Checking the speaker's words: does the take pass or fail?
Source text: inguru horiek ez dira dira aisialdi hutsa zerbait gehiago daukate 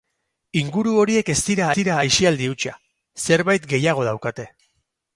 pass